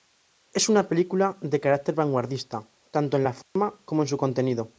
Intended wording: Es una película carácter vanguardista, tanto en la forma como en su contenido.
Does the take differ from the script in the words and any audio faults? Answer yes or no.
yes